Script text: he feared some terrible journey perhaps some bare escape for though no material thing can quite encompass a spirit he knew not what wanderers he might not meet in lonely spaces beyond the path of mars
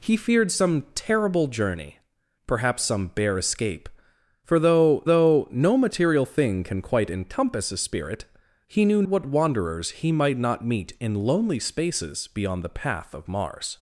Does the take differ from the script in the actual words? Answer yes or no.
yes